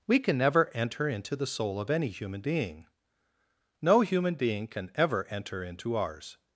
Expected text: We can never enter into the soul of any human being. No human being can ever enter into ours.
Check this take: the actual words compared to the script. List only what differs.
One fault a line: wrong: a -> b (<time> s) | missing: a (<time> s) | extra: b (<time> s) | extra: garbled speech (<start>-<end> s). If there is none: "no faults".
no faults